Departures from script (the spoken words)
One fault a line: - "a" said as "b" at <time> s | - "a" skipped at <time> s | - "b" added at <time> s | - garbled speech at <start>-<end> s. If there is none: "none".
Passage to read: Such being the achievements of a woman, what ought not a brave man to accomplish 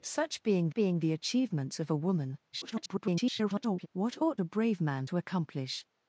- "being" added at 0.7 s
- garbled speech at 2.5-3.9 s
- "not" skipped at 4.4 s